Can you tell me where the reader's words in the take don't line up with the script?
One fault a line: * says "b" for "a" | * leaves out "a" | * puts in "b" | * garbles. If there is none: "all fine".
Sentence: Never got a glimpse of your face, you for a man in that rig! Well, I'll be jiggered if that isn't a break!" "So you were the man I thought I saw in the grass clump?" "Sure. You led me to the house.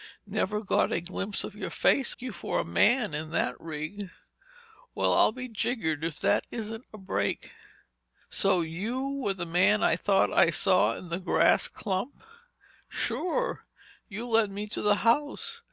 all fine